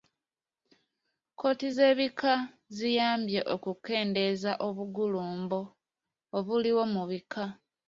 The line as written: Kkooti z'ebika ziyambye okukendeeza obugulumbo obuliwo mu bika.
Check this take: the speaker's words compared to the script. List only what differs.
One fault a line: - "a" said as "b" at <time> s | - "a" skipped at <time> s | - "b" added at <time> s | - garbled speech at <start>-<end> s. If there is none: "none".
none